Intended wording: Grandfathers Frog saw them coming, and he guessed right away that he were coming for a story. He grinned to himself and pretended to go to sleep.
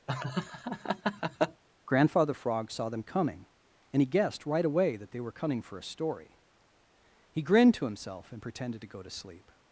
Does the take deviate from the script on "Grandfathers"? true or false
true